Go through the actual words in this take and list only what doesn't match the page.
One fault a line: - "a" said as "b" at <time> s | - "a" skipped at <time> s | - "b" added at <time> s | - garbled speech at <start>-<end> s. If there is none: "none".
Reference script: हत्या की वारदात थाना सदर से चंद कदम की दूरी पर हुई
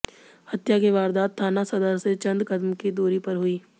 none